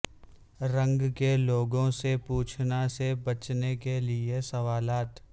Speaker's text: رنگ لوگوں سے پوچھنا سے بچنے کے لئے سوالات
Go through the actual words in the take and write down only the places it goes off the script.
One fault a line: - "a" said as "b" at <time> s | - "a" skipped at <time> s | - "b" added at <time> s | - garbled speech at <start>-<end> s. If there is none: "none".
- "کے" added at 1.1 s